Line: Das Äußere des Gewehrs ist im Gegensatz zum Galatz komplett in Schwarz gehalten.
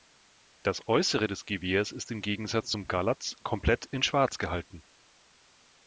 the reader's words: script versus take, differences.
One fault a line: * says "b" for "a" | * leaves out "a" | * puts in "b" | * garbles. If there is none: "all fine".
all fine